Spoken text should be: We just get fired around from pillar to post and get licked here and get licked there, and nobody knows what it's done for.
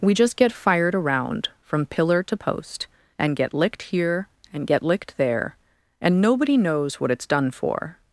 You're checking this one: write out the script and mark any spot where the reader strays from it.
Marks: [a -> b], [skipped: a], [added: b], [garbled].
We just get fired around from pillar to post and get licked here and get licked there, and nobody knows what it's done for.